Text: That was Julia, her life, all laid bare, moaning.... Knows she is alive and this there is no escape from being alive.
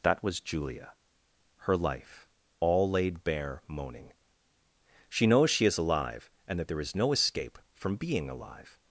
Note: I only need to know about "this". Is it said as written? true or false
false